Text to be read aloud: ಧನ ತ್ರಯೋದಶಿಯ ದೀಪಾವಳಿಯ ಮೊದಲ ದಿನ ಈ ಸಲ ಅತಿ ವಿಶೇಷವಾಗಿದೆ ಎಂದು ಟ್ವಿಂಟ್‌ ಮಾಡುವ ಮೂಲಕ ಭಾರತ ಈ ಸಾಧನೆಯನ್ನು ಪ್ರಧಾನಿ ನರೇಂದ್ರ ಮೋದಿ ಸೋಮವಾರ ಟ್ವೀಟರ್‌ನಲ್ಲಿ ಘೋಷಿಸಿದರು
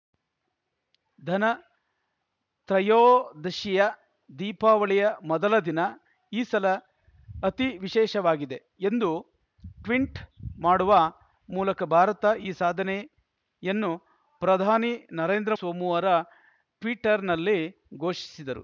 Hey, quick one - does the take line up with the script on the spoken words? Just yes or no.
no